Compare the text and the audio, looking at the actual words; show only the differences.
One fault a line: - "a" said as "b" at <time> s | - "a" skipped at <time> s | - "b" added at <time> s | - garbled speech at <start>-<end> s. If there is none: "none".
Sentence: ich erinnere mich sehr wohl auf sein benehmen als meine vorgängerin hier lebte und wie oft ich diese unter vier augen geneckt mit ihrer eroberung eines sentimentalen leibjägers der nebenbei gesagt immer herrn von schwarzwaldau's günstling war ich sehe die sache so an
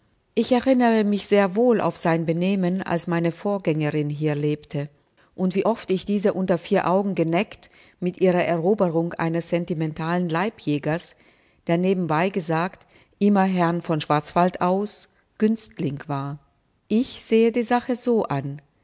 none